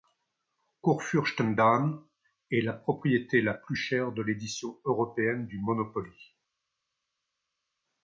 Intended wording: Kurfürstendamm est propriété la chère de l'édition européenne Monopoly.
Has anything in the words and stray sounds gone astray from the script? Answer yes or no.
yes